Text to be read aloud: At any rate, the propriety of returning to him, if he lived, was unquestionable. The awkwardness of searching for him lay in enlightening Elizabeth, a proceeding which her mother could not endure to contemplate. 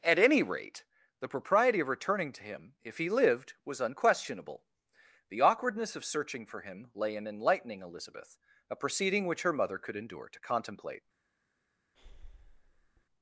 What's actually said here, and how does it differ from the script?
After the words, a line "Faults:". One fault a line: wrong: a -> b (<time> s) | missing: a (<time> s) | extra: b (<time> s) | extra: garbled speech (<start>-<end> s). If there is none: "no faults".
At any rate, the propriety of returning to him, if he lived, was unquestionable. The awkwardness of searching for him lay in enlightening Elizabeth, a proceeding which her mother could endure to contemplate.
Faults:
missing: not (9.9 s)